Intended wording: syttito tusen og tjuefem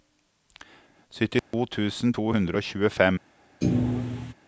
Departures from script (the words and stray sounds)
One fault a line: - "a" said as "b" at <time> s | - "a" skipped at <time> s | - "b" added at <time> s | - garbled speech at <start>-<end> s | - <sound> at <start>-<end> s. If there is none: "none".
- dropout at 1.4-1.5 s
- "to hundre" added at 2.1 s
- thud at 3.6-4.3 s